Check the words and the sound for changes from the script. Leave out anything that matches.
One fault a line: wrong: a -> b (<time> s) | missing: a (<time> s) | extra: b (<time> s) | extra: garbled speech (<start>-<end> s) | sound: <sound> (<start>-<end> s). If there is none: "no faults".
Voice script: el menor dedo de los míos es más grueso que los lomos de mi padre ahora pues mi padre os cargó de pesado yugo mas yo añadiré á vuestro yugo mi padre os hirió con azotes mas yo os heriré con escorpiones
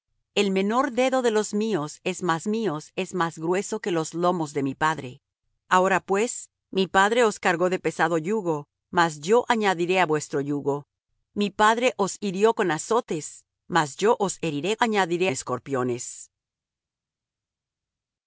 extra: míos es más (2.5 s)
wrong: con -> añadiré (14.8 s)